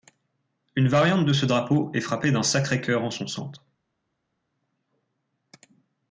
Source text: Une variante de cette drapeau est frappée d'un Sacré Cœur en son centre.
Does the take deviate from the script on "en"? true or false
false